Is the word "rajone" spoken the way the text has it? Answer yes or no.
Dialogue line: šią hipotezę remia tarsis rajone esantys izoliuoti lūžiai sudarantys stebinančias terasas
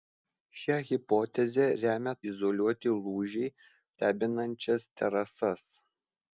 no